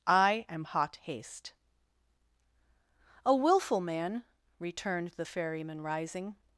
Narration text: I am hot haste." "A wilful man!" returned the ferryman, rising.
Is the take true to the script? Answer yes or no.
yes